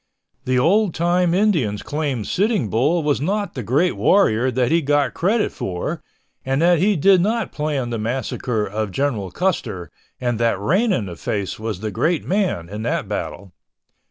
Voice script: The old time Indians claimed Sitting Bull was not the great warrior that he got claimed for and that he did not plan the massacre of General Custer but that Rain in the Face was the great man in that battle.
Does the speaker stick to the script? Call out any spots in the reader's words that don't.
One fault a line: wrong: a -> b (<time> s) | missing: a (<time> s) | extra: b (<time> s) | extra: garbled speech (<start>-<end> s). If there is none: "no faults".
wrong: claimed -> credit (5.1 s)
wrong: but -> and (10.2 s)